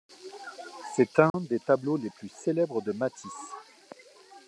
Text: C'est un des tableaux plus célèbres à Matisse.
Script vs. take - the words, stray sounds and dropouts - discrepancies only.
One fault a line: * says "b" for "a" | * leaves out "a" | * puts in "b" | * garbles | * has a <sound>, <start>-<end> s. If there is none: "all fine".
* has a dropout, 1.3-1.3 s
* puts in "les"
* says "de" for "à"